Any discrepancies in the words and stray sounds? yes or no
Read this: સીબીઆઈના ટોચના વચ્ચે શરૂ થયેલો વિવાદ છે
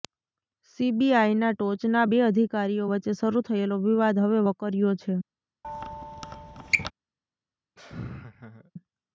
yes